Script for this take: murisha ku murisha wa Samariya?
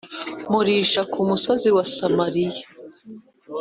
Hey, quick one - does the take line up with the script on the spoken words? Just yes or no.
no